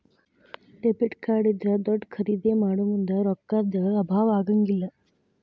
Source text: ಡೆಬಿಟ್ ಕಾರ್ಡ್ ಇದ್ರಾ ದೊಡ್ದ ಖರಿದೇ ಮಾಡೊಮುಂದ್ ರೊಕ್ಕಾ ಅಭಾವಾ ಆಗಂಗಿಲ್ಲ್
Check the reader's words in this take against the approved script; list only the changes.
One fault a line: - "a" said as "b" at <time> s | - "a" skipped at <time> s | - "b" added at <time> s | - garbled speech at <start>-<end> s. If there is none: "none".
- "ದ್" added at 3.7 s